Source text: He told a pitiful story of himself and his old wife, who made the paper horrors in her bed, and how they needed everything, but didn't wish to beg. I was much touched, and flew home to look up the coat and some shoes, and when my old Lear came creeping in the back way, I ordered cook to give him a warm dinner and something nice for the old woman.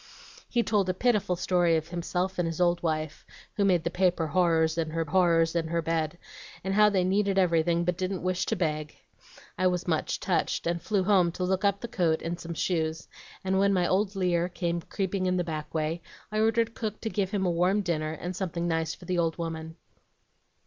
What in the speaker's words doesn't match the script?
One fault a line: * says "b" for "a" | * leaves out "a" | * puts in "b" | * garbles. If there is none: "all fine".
* puts in "horrors in her"